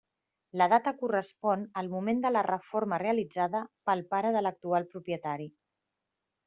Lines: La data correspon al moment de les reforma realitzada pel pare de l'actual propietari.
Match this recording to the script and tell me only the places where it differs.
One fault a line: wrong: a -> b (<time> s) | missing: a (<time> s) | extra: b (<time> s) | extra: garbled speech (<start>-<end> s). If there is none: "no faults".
wrong: les -> la (2.3 s)